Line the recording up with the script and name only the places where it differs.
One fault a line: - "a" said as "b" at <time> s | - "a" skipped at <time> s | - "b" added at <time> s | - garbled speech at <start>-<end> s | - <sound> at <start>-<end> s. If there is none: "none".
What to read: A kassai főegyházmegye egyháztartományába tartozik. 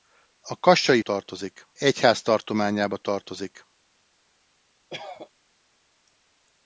- "főegyházmegye" said as "tartozik" at 1.0 s
- cough at 4.9-5.3 s